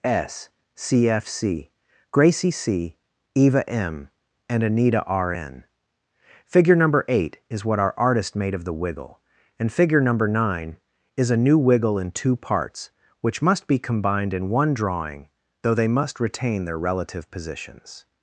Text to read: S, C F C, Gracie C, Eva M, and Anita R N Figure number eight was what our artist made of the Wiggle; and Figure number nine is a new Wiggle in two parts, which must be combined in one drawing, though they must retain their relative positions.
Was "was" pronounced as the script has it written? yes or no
no